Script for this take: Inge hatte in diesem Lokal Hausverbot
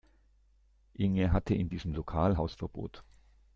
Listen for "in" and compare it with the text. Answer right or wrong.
right